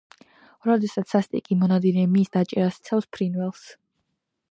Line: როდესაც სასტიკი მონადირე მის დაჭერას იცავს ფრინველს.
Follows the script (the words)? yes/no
yes